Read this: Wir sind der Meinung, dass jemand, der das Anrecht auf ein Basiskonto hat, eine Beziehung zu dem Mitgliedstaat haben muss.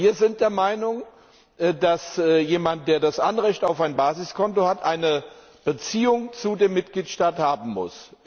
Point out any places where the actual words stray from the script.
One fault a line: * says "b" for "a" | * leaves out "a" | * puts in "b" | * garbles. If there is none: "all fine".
all fine